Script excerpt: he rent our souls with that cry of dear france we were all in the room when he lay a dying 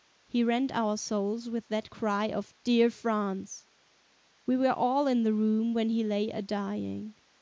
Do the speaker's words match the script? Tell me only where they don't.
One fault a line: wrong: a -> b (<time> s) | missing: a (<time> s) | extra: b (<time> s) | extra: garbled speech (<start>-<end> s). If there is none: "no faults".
no faults